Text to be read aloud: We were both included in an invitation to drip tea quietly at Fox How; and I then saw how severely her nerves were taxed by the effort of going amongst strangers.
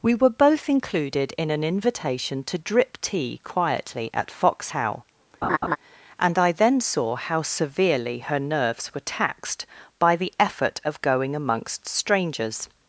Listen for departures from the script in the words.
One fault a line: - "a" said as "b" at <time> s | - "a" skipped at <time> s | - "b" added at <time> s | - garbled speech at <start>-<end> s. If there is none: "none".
none